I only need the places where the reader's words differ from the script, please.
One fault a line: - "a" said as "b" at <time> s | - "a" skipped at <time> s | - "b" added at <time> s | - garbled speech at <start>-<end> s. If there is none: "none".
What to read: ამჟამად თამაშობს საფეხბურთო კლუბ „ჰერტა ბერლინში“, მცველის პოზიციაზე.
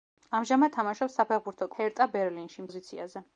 - "კლუბ" skipped at 1.7 s
- "მცველის" skipped at 2.7 s